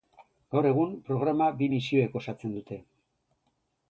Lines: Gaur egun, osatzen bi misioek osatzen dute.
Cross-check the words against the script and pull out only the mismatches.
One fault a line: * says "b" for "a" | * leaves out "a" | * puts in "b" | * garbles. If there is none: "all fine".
* says "programa" for "osatzen"